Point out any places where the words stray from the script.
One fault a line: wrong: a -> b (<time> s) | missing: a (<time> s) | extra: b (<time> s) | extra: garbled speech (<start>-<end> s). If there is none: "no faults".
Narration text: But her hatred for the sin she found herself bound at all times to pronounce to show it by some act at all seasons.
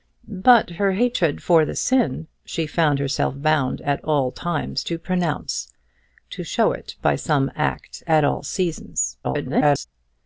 extra: garbled speech (9.2-9.9 s)